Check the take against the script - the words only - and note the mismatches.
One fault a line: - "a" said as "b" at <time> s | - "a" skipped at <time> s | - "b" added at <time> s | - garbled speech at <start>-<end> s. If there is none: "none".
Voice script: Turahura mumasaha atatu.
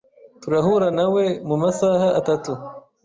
- "nawe" added at 1.0 s